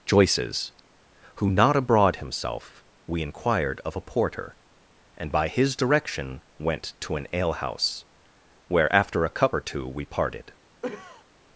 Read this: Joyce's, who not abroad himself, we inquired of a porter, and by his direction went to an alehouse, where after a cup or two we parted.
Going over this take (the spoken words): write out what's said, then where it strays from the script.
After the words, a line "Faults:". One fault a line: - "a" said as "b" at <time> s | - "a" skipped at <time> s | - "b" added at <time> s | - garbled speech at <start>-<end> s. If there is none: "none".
Joyce's, who not abroad himself, we inquired of a porter, and by his direction went to an alehouse, where after a cup or two we parted.
Faults:
none